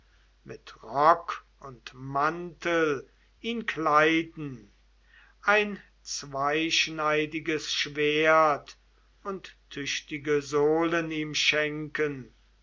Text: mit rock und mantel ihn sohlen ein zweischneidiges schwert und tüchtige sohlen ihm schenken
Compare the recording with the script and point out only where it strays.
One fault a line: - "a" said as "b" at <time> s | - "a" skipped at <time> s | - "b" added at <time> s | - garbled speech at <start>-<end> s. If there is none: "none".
- "sohlen" said as "kleiden" at 3.7 s